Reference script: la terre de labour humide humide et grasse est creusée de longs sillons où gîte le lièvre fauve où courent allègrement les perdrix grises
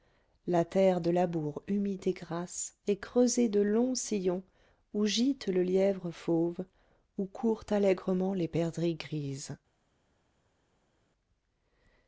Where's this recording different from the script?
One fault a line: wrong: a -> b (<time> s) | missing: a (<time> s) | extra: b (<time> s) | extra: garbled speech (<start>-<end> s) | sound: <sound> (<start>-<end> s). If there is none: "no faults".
missing: humide (2.1 s)